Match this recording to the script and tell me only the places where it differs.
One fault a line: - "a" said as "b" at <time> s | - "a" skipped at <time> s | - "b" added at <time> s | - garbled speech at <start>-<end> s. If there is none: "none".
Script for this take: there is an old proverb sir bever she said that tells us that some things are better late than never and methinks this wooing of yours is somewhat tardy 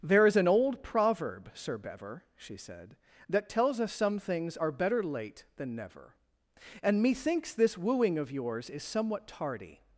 - "that" skipped at 3.9 s